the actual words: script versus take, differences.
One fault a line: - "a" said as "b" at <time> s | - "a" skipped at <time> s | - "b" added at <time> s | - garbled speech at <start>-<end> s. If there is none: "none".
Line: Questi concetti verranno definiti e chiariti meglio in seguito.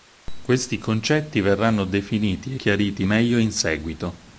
- "e" skipped at 2.5 s